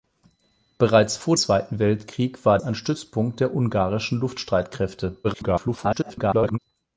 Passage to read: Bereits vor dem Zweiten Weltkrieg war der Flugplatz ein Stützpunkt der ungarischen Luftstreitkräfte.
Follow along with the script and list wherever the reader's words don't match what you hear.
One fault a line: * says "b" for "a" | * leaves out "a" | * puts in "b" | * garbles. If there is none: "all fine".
* leaves out "dem"
* leaves out "der Flugplatz"
* garbles